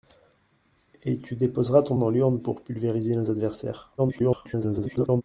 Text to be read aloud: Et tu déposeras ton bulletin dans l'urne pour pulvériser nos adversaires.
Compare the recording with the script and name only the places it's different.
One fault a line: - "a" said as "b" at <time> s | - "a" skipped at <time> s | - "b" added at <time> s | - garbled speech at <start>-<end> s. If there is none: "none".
- "bulletin" skipped at 1.9 s
- garbled speech at 4.0-5.2 s